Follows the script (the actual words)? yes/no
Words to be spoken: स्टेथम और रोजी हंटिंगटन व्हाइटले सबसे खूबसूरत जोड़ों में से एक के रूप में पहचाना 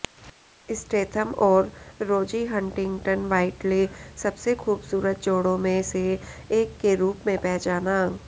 yes